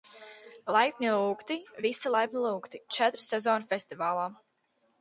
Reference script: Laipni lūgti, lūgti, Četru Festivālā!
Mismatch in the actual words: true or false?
true